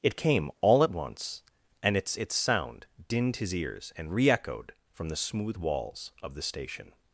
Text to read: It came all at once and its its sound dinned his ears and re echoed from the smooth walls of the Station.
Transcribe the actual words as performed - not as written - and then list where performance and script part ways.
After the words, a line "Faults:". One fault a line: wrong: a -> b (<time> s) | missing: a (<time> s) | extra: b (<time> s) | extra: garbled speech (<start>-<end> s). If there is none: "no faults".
It came all at once and its its sound dinned his ears and re echoed from the smooth walls of the Station.
Faults:
no faults